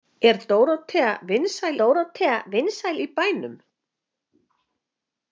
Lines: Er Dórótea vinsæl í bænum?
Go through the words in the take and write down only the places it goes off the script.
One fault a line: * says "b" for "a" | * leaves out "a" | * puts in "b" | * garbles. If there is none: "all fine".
* puts in "Dórótea vinsæl"